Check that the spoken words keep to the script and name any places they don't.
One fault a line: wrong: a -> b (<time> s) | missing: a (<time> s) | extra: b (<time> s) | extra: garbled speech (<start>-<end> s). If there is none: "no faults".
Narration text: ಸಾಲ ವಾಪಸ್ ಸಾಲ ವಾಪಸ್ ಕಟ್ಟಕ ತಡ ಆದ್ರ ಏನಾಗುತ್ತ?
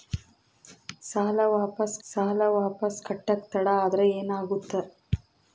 no faults